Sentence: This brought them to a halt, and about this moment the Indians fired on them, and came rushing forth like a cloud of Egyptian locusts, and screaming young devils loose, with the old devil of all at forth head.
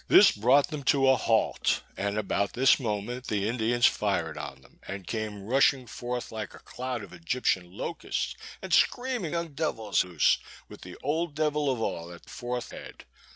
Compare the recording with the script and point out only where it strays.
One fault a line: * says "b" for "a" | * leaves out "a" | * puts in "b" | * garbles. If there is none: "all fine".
all fine